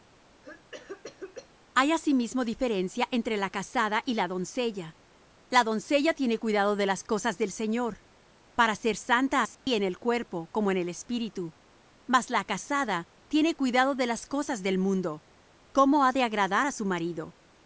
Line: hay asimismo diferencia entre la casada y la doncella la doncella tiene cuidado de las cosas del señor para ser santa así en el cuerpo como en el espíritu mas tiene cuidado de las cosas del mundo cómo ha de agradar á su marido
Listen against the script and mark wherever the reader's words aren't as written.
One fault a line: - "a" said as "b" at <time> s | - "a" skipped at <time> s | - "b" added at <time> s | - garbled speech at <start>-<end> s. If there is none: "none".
- "la casada" added at 12.3 s